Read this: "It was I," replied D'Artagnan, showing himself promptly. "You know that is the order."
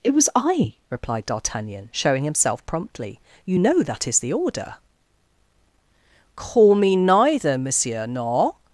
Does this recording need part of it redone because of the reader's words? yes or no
yes